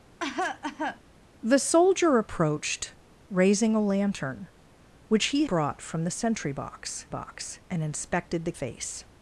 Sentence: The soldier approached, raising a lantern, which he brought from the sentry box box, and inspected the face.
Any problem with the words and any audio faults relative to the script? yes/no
yes